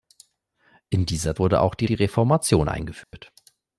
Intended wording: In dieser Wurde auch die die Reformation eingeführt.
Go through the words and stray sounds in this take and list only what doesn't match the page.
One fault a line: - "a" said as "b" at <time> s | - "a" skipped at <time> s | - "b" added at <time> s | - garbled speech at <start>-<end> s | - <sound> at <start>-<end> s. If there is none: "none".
- dropout at 3.0-3.1 s